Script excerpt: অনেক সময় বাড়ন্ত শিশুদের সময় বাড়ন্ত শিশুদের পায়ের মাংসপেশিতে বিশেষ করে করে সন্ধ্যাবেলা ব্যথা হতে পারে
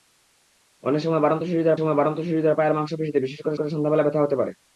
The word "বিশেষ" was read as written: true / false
true